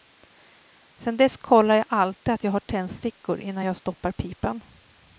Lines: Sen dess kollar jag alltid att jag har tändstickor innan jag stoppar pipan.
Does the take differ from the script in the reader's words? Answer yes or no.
no